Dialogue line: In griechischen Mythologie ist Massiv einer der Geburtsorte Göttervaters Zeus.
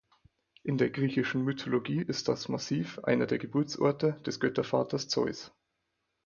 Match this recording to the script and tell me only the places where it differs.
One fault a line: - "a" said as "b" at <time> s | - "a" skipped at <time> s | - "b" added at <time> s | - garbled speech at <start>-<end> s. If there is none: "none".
- "der" added at 0.8 s
- "das" added at 2.3 s
- "des" added at 4.3 s